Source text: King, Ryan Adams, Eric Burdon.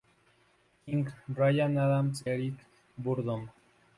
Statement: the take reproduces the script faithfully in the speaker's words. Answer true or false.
true